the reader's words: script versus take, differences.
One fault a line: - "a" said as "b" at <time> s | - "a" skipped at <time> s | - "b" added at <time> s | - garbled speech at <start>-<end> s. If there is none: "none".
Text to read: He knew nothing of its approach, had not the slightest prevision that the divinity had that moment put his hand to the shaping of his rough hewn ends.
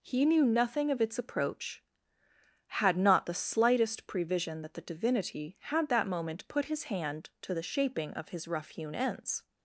none